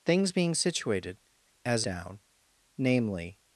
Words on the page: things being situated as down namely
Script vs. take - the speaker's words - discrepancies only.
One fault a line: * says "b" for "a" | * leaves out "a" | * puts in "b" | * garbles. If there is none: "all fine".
all fine